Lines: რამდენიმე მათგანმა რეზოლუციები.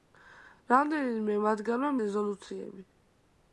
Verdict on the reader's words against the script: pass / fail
pass